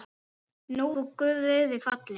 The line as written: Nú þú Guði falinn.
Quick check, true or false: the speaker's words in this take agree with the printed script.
true